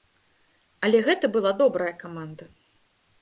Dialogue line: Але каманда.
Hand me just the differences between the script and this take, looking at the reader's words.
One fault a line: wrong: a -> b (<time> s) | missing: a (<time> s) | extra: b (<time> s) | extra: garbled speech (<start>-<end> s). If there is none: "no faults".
extra: гэта была добрая (1.1 s)